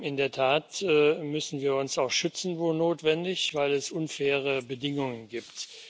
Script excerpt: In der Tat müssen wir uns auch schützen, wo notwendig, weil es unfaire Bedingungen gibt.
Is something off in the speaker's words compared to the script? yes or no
no